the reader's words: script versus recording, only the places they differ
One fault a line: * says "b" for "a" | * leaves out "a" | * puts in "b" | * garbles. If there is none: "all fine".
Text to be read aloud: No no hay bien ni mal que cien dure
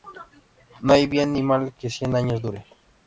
* leaves out "no"
* puts in "años"